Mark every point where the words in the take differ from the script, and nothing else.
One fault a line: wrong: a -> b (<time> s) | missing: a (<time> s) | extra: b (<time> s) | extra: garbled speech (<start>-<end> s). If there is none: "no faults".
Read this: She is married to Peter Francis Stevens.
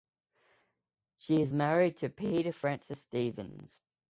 no faults